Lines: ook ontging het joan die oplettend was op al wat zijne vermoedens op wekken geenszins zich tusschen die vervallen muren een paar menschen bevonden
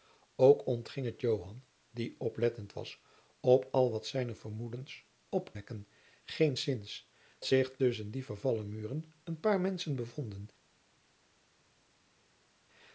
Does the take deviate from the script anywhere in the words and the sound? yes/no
no